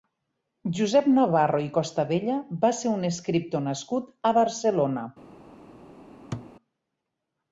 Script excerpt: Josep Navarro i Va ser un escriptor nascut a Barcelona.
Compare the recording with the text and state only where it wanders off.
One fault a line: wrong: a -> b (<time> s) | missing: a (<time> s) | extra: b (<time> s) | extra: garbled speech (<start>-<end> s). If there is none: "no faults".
extra: Costabella (1.8 s)